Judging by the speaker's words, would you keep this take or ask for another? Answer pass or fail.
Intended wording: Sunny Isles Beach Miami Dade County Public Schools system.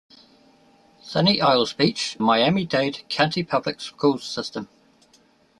pass